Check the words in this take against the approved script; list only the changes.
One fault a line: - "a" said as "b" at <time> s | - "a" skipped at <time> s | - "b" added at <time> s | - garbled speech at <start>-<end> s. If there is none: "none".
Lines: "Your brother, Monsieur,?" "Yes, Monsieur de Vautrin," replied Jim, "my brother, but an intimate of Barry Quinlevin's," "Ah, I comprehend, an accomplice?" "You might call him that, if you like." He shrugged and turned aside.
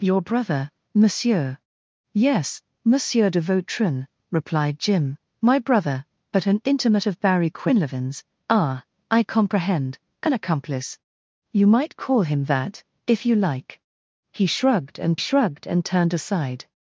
- "shrugged and" added at 15.2 s